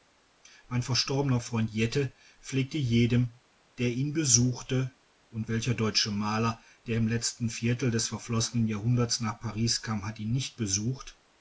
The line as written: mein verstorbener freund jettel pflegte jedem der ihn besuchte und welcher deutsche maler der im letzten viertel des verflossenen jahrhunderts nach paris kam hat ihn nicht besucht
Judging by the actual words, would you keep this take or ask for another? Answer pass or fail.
pass